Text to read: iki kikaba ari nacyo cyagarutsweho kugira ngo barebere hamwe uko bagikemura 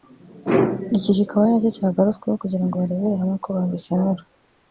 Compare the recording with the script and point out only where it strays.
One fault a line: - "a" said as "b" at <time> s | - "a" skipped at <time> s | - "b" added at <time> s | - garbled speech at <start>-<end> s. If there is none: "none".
none